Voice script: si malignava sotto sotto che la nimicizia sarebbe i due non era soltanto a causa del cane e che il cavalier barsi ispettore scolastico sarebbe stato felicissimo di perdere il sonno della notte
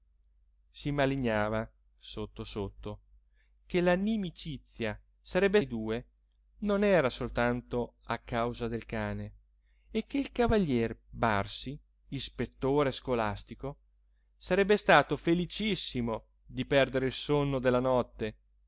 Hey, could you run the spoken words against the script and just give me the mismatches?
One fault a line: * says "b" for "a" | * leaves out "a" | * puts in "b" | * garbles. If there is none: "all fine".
all fine